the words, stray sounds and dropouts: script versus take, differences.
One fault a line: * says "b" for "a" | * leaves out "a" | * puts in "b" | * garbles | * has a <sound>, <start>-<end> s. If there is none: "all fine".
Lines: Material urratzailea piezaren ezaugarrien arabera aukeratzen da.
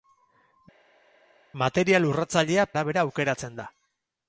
* leaves out "piezaren ezaugarrien"